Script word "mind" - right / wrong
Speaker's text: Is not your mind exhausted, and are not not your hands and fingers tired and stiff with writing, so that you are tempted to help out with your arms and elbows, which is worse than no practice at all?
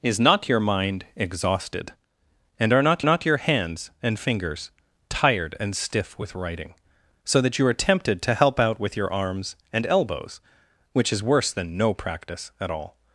right